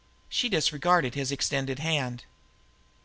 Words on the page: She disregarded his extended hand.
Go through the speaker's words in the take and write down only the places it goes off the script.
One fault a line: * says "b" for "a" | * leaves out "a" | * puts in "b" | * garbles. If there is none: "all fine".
all fine